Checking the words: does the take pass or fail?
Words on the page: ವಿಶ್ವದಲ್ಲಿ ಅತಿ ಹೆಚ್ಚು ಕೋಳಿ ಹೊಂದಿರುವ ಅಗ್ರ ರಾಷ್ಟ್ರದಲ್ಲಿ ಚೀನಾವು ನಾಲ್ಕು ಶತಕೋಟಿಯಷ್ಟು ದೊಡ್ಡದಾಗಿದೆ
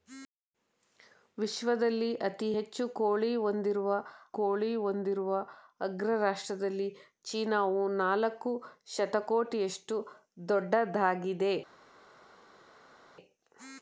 fail